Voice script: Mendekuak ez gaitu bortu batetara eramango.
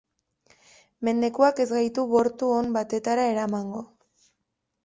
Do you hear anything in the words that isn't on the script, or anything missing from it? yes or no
yes